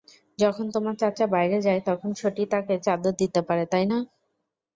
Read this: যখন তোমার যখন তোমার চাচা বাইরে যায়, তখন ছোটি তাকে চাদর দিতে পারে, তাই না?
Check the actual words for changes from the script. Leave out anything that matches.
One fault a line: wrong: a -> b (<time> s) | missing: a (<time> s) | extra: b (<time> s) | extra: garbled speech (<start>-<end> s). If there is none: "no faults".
missing: যখন তোমার (0.9 s)